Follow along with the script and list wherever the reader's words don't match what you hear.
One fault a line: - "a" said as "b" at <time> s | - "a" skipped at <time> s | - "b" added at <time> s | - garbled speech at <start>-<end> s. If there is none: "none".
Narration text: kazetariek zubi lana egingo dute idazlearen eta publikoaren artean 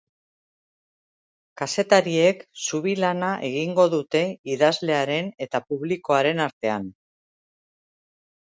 none